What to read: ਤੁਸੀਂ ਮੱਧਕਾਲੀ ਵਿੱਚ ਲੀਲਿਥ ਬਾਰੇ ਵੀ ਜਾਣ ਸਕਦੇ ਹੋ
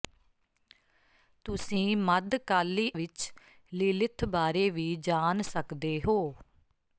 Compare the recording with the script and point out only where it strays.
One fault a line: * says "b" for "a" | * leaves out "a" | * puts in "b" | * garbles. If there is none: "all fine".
all fine